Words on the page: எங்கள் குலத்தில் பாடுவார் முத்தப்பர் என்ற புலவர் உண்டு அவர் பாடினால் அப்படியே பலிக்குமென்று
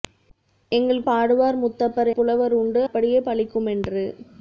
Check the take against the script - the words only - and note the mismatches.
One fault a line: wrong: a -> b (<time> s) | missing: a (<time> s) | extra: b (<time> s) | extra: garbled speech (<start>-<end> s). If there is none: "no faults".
missing: குலத்தில் (1.0 s)
missing: என்ற (2.1 s)
missing: அவர் பாடினால் (2.8 s)